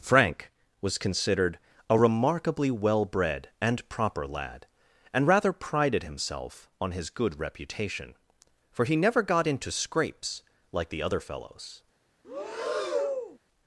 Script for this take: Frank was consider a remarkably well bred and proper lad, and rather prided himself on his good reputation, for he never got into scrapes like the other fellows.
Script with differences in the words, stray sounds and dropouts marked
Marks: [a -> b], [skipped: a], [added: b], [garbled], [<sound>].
Frank was [consider -> considered] a remarkably well bred and proper lad, and rather prided himself on his good reputation, for he never got into scrapes like the other fellows. [breath]